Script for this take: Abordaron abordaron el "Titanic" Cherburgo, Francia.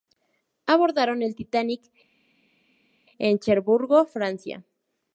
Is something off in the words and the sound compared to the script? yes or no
yes